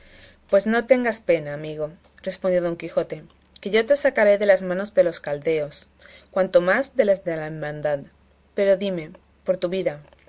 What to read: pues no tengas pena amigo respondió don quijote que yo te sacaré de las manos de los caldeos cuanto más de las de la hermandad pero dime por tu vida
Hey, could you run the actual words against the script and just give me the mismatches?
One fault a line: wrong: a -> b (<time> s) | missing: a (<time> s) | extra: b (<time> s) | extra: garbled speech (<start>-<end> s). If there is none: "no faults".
no faults